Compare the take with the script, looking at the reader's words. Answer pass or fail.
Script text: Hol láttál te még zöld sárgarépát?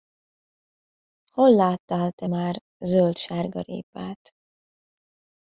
fail